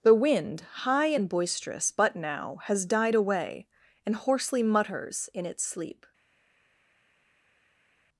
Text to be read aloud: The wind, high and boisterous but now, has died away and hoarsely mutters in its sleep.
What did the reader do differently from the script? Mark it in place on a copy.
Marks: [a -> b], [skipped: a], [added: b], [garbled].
The wind, high and boisterous but now, has died away and hoarsely mutters in its sleep.